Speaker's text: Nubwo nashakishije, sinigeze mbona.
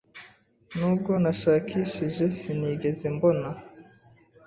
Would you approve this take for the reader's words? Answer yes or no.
yes